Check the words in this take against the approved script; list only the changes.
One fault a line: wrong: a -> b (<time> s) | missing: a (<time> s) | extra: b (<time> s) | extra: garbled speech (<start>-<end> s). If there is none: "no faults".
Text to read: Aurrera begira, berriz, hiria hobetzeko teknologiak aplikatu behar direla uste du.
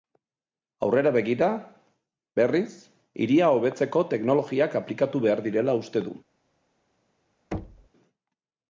no faults